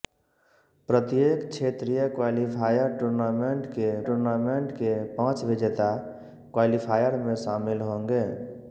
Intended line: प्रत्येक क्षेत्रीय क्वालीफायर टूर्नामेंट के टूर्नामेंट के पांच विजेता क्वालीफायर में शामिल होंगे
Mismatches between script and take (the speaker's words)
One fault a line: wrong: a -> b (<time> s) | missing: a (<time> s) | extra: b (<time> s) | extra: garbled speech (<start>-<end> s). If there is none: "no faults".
no faults